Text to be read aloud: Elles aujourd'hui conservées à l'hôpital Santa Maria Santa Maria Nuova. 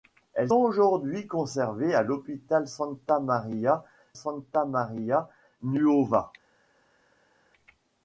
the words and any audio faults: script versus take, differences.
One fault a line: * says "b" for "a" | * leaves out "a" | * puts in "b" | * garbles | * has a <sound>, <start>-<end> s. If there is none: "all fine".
all fine